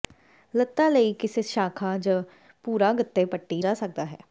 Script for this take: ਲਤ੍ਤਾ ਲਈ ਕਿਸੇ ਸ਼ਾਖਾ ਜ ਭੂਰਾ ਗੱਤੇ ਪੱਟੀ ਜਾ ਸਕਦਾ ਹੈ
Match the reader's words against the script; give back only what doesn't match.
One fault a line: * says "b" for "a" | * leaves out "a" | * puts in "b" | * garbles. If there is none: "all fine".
all fine